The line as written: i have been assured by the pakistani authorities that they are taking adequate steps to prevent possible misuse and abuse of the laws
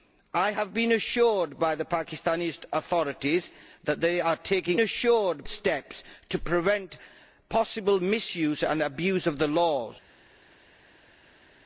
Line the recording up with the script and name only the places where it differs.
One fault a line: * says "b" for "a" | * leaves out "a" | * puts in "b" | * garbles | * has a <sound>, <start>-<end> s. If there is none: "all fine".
* says "assured" for "adequate"